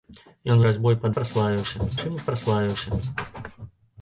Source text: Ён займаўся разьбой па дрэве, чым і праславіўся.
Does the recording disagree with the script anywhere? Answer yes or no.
yes